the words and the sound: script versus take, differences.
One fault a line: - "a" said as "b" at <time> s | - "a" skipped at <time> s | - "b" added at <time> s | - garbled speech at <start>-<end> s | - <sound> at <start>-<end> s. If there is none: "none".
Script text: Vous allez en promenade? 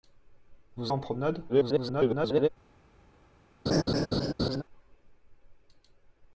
- "allez" skipped at 0.9 s
- garbled speech at 1.5-2.5 s
- laugh at 3.7-4.6 s